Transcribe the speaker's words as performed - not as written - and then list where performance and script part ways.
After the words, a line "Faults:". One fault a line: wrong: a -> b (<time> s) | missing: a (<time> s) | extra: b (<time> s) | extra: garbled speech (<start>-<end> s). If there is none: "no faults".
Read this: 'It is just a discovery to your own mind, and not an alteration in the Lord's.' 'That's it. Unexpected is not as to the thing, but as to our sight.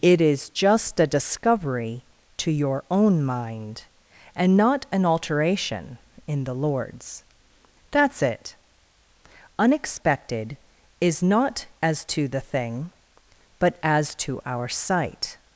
'It is just a discovery to your own mind, and not an alteration in the Lord's.' 'That's it. Unexpected is not as to the thing, but as to our sight.
Faults:
no faults